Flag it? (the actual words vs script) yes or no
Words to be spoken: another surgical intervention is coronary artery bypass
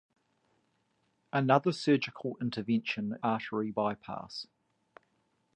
yes